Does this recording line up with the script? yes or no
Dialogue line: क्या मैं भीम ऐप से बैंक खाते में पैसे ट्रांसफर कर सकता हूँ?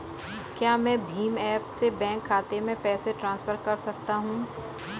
yes